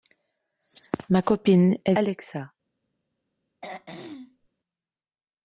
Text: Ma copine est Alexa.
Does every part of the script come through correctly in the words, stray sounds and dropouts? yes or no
no